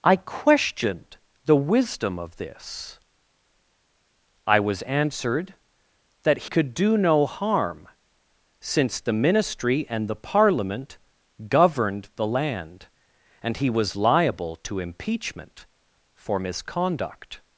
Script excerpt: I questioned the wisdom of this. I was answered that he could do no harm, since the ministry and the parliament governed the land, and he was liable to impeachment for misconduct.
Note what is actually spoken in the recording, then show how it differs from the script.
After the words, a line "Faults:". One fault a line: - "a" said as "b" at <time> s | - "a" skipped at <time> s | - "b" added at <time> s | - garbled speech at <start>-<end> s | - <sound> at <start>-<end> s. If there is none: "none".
I questioned the wisdom of this. I was answered that could do no harm, since the ministry and the parliament governed the land, and he was liable to impeachment for misconduct.
Faults:
- "he" skipped at 6.5 s